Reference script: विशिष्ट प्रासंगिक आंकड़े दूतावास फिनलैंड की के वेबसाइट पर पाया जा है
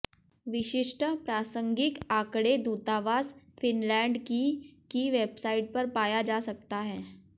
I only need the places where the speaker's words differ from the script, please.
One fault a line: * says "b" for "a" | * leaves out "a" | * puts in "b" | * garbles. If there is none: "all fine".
* says "की" for "के"
* puts in "सकता"